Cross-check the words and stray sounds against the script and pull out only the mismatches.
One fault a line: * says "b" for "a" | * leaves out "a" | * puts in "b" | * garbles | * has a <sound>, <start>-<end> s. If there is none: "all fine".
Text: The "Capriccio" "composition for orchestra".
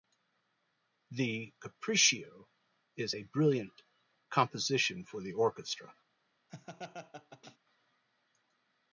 * puts in "is a brilliant"
* puts in "the"
* has a laugh, 6.5-7.6 s